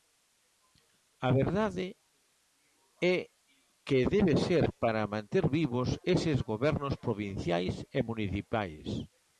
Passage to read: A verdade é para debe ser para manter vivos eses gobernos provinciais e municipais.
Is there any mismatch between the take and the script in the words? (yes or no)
yes